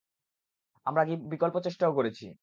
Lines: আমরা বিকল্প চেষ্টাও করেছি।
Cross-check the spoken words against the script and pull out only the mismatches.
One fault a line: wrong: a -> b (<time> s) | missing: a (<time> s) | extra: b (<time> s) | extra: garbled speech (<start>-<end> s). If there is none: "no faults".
no faults